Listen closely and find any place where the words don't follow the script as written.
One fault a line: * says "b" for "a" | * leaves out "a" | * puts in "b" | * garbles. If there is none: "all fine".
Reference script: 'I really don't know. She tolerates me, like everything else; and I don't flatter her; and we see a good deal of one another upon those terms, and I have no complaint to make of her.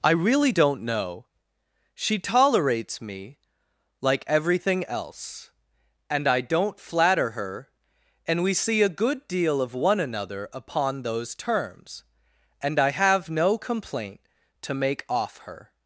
* says "off" for "of"